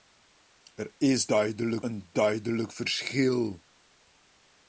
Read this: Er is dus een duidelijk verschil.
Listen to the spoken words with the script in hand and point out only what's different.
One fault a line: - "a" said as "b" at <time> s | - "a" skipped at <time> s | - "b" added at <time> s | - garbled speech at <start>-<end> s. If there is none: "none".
- "dus" said as "duidelijk" at 1.2 s